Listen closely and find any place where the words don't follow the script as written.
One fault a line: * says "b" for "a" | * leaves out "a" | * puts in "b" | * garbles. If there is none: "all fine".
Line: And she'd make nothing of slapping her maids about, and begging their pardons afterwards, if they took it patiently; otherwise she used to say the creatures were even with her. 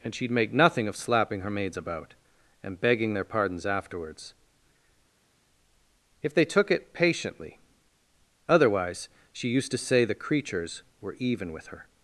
all fine